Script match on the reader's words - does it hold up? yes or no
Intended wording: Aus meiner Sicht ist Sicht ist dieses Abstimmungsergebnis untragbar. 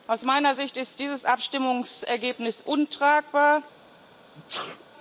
no